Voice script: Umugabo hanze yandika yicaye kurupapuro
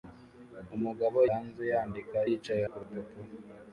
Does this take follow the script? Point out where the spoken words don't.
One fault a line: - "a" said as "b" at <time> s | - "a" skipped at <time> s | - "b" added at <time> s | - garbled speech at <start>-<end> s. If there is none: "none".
none